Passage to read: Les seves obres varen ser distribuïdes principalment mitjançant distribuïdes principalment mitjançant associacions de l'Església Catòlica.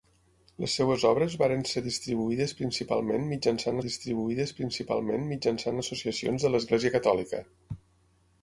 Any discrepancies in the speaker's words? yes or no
no